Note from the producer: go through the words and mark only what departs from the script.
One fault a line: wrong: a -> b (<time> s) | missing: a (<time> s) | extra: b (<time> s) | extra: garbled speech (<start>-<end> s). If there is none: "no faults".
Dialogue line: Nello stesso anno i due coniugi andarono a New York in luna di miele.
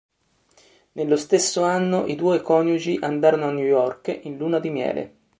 no faults